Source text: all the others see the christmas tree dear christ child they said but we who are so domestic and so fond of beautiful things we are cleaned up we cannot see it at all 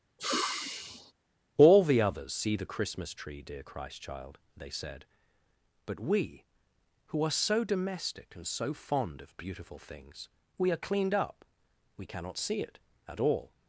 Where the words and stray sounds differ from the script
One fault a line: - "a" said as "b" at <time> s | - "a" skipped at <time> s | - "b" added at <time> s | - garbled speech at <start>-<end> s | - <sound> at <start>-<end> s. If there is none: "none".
- sigh at 0.2-1.1 s